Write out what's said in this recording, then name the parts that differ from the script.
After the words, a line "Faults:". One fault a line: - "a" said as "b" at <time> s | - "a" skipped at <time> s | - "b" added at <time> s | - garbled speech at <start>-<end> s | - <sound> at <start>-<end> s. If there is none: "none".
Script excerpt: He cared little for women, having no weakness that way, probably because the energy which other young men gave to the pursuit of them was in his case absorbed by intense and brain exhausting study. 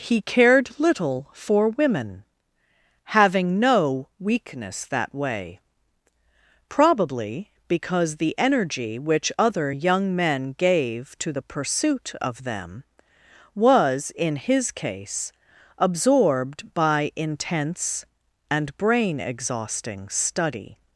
He cared little for women, having no weakness that way, probably because the energy which other young men gave to the pursuit of them was in his case absorbed by intense and brain exhausting study.
Faults:
none